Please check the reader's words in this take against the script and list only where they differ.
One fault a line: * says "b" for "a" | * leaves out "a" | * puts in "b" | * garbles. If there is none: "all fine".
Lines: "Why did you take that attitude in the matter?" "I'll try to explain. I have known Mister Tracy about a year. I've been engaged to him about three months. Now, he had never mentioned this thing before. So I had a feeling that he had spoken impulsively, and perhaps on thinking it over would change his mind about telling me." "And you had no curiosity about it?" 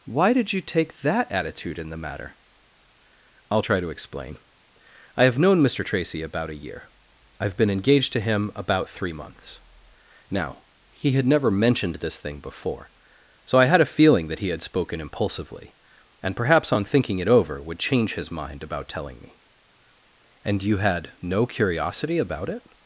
all fine